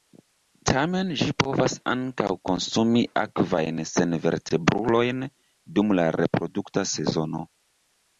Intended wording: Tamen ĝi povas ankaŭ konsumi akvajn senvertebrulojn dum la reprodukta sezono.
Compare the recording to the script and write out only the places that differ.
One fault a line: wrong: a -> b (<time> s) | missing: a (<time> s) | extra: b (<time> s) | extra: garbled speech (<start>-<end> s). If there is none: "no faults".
no faults